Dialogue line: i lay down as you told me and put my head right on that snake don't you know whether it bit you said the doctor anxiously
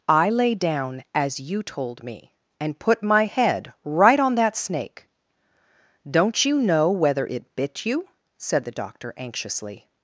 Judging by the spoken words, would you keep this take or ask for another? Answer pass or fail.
pass